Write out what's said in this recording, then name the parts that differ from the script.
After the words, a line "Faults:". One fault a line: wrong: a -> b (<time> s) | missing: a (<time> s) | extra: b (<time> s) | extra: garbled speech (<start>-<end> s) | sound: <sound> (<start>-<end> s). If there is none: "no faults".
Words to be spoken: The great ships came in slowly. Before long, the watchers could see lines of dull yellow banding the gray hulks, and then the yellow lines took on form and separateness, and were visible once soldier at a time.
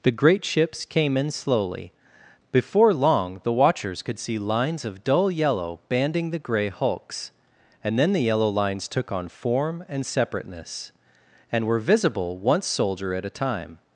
The great ships came in slowly. Before long, the watchers could see lines of dull yellow banding the gray hulks, and then the yellow lines took on form and separateness, and were visible once soldier at a time.
Faults:
no faults